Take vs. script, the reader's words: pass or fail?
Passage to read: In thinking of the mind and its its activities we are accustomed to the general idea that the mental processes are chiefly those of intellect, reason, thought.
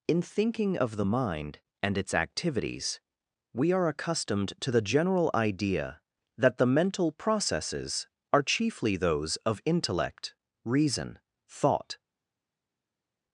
fail